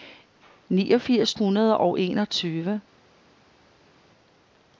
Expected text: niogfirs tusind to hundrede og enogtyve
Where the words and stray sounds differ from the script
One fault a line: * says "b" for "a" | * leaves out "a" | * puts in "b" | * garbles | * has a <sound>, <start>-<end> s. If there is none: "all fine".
* leaves out "tusind to"